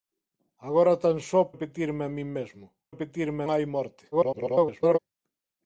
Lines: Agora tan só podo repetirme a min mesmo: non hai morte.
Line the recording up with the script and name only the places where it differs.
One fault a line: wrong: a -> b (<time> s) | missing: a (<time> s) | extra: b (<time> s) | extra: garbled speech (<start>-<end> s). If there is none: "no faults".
missing: podo (1.4 s)
wrong: non -> repetirme (2.9 s)
extra: garbled speech (4.1-5.0 s)